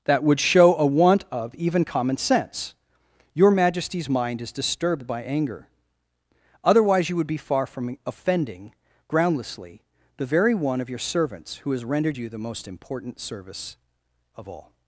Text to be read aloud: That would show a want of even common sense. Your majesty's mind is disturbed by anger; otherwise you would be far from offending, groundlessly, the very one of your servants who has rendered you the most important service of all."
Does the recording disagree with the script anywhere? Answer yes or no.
no